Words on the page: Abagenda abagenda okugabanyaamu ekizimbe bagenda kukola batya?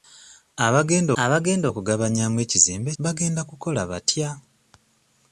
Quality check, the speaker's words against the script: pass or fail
pass